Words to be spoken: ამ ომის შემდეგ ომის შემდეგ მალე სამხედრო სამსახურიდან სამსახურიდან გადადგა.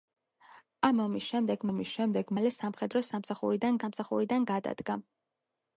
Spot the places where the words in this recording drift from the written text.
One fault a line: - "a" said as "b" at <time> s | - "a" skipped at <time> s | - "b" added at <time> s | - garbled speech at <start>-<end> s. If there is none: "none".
none